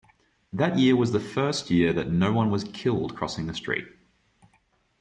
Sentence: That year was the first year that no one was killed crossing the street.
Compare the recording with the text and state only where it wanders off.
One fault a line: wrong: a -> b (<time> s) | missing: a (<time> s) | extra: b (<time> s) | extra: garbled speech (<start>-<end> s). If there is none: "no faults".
no faults